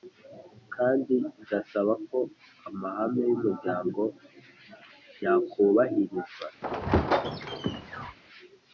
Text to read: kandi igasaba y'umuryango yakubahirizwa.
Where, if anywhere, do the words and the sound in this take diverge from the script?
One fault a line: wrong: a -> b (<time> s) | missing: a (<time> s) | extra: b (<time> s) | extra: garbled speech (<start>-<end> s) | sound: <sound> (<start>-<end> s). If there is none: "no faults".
extra: ko amahame (2.1 s)
sound: squeak (6.6-8.2 s)